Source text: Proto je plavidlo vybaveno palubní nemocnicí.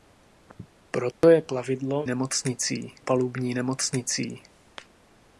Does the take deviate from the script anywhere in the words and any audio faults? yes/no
yes